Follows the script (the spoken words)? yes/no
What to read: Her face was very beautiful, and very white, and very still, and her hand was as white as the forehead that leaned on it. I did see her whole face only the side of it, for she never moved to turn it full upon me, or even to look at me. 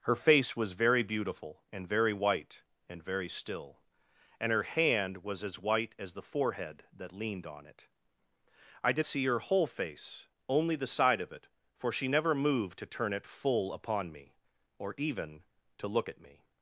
yes